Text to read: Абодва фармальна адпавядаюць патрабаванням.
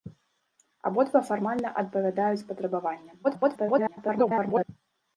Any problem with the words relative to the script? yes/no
yes